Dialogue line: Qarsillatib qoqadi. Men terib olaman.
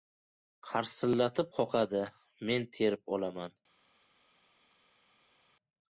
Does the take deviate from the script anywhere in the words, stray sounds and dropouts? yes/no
no